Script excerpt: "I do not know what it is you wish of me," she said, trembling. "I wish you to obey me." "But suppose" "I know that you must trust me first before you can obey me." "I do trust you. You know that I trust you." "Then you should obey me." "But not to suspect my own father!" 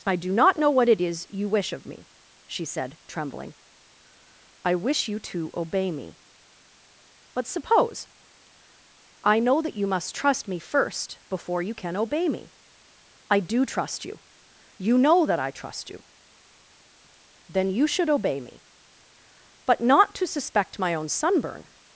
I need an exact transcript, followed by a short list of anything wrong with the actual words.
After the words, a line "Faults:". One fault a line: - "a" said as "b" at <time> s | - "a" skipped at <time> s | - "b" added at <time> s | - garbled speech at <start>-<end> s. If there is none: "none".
"I do not know what it is you wish of me," she said, trembling. "I wish you to obey me." "But suppose" "I know that you must trust me first before you can obey me." "I do trust you. You know that I trust you." "Then you should obey me." "But not to suspect my own sunburn!"
Faults:
- "father" said as "sunburn" at 21.1 s